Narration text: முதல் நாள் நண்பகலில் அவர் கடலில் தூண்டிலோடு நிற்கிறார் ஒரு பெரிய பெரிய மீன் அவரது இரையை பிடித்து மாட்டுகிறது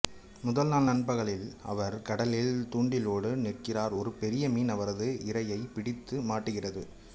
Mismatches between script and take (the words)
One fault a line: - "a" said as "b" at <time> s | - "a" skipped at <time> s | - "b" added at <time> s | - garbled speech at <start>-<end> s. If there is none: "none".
- "பெரிய" skipped at 4.5 s